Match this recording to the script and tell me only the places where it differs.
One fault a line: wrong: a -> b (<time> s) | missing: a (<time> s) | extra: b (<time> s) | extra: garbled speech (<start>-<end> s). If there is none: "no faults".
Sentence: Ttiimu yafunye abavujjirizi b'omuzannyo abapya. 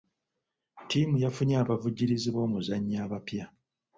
no faults